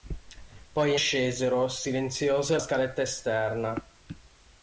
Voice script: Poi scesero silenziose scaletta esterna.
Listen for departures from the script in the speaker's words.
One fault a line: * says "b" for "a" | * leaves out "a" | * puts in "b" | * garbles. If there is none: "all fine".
all fine